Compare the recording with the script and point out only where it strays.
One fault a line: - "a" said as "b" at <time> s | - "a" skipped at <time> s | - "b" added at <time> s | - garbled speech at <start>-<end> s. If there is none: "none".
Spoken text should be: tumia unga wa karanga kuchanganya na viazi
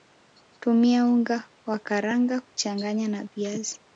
none